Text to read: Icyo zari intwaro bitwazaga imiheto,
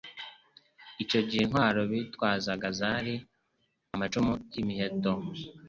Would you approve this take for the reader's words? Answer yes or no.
no